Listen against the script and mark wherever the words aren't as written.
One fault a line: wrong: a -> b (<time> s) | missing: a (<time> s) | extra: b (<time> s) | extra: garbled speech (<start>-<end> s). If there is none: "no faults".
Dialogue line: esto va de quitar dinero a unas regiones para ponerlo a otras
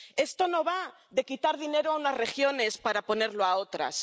extra: no (0.5 s)